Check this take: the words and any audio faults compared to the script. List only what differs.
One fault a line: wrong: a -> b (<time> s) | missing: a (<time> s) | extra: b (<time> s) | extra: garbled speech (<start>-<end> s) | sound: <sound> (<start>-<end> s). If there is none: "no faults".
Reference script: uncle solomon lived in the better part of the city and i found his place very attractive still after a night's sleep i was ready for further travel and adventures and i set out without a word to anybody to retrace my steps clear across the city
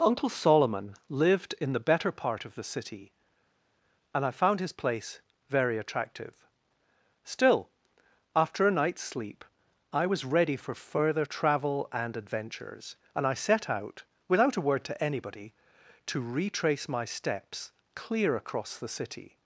no faults